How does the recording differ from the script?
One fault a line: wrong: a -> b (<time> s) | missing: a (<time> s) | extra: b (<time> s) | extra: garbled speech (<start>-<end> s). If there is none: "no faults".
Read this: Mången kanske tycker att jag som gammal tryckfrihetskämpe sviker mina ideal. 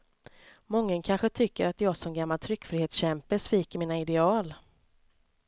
no faults